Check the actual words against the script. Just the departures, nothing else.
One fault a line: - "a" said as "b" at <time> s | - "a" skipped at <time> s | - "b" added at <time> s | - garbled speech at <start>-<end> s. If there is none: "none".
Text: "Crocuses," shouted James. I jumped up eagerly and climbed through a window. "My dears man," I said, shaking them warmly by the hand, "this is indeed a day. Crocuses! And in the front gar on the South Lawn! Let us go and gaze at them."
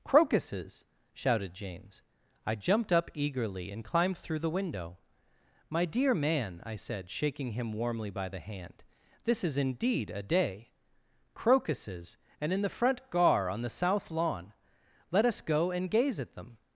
- "a" said as "the" at 4.4 s
- "dears" said as "dear" at 5.8 s
- "them" said as "him" at 7.5 s